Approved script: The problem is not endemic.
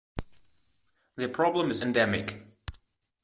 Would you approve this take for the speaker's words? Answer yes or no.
no